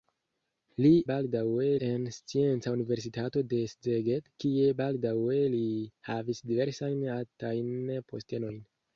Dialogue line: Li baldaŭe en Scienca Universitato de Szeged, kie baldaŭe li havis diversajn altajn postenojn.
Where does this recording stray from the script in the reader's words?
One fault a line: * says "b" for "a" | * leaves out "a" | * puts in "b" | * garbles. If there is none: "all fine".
all fine